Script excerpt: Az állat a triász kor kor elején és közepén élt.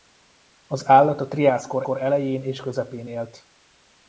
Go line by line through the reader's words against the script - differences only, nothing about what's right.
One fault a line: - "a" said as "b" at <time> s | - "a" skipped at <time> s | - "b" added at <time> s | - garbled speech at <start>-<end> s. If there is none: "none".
none